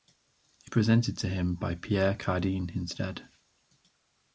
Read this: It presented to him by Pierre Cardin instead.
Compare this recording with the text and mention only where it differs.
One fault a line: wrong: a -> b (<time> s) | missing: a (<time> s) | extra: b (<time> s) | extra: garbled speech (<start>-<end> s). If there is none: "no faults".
no faults